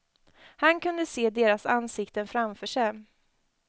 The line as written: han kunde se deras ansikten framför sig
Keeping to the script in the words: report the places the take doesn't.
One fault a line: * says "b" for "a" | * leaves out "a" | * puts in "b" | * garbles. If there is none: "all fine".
all fine